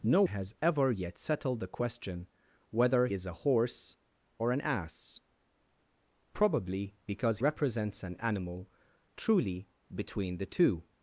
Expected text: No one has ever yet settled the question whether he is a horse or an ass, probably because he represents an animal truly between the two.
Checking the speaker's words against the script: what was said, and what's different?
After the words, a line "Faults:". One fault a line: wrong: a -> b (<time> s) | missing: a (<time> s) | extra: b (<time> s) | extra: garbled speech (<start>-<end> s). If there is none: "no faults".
No has ever yet settled the question whether is a horse or an ass, probably because represents an animal truly between the two.
Faults:
missing: one (0.2 s)
missing: he (3.1 s)
missing: he (7.4 s)